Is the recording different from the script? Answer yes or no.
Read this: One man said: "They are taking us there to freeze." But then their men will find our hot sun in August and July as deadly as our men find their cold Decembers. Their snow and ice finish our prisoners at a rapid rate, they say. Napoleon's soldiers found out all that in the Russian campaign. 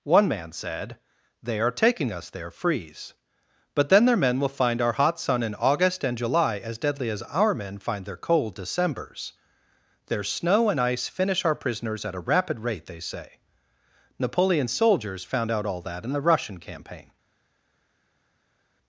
yes